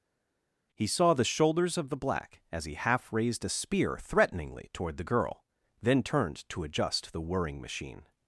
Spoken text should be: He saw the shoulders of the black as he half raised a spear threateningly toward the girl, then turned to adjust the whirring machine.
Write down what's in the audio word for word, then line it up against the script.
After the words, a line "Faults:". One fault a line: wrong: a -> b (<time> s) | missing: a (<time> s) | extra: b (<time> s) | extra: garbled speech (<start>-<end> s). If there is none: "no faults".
He saw the shoulders of the black as he half raised a spear threateningly toward the girl, then turned to adjust the whirring machine.
Faults:
no faults